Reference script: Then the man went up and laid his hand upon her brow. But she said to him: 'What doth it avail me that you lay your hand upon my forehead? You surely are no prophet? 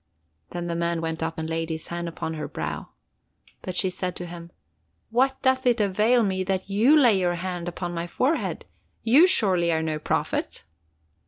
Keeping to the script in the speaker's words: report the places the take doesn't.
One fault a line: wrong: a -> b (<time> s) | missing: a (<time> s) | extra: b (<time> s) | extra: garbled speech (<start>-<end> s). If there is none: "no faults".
no faults